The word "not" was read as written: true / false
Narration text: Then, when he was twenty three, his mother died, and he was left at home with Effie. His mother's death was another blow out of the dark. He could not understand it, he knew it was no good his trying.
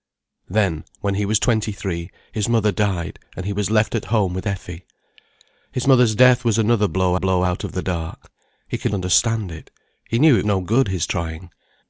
false